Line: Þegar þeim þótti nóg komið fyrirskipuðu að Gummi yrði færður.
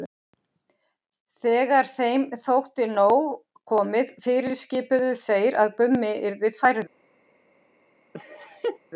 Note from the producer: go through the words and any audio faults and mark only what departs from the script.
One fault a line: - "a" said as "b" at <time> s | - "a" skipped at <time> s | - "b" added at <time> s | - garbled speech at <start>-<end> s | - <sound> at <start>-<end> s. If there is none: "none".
- "þeir" added at 5.2 s
- laugh at 8.1-8.8 s